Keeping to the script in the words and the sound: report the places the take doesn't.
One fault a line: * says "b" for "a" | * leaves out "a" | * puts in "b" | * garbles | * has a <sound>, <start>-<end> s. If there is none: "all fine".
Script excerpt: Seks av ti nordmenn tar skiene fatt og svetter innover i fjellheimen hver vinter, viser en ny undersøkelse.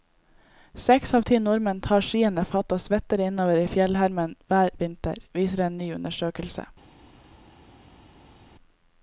all fine